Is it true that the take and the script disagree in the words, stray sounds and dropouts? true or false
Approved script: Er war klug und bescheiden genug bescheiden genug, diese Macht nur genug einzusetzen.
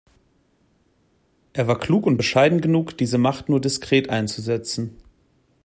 true